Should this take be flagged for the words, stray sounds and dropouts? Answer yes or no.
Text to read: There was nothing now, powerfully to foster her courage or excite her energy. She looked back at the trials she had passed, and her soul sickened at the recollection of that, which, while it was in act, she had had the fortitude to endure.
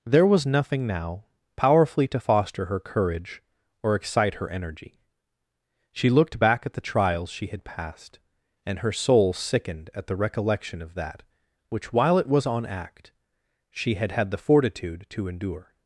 yes